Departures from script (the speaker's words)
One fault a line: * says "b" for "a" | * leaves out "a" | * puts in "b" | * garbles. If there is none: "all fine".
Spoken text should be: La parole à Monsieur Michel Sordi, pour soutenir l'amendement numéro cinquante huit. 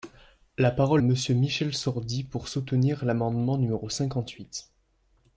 all fine